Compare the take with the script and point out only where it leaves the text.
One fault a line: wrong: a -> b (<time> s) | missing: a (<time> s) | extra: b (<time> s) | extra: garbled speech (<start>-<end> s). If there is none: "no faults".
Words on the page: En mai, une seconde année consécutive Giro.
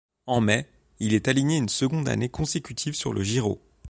extra: il est aligné (1.0 s)
extra: sur le (3.0 s)